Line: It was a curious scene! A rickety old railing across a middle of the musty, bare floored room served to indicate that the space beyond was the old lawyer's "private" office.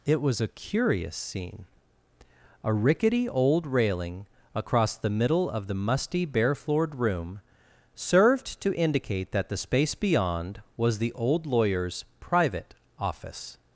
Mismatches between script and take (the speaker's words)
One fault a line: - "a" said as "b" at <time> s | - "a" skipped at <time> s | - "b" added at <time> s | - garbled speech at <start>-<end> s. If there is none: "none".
- "a" said as "the" at 5.0 s